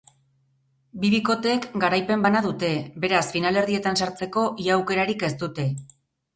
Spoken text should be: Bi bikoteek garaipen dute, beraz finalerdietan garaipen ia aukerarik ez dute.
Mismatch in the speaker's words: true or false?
true